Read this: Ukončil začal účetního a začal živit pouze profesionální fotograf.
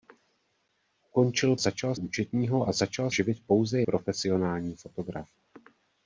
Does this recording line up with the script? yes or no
yes